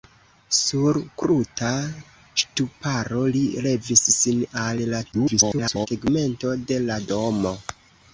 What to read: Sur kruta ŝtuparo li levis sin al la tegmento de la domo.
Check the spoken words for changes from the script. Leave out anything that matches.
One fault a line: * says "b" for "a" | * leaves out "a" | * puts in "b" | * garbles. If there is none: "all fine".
* garbles